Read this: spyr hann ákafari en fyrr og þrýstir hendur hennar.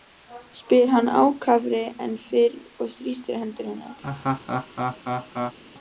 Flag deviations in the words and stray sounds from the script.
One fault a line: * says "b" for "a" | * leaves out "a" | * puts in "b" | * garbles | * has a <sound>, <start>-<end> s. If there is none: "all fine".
* has a laugh, 4.0-5.6 s